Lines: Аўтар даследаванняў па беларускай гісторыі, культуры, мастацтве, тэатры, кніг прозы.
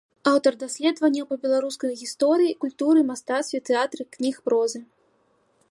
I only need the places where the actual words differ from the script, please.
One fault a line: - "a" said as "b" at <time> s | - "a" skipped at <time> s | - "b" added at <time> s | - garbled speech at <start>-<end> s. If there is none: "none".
none